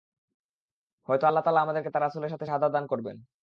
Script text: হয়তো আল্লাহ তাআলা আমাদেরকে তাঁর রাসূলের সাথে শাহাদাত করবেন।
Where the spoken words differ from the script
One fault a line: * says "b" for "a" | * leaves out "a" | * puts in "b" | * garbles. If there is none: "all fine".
* puts in "দান"